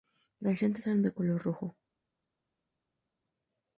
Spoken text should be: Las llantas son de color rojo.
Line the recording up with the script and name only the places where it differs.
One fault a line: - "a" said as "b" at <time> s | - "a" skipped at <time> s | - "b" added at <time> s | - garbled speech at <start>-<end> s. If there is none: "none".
- "son" said as "eran" at 0.9 s